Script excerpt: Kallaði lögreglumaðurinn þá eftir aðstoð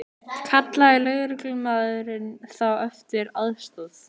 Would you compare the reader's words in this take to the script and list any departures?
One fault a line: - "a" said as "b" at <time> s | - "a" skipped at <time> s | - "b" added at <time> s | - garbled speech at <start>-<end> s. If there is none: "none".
none